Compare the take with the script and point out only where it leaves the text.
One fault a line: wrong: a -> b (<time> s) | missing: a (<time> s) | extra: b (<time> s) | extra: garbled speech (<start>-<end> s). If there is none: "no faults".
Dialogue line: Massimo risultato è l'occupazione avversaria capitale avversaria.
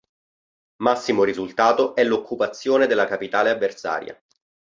wrong: avversaria -> della (2.9 s)